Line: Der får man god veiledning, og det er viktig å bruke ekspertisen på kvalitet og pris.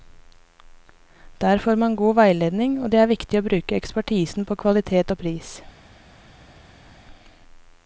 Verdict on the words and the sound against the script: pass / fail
pass